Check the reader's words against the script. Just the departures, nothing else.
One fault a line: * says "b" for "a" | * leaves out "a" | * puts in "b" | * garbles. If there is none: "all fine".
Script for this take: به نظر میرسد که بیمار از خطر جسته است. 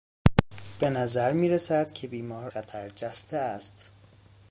* leaves out "از"